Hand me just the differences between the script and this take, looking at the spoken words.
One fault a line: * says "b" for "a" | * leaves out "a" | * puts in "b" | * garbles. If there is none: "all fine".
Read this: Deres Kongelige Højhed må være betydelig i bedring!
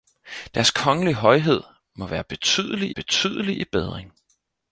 * puts in "betydelig"